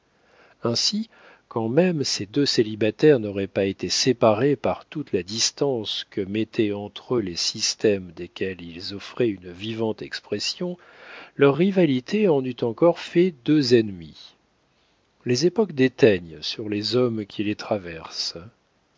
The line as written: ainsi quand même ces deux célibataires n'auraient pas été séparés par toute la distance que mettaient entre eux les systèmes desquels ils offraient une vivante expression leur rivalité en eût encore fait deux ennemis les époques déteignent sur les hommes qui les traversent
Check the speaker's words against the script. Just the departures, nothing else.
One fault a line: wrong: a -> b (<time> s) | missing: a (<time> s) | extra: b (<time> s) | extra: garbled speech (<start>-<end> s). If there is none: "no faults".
no faults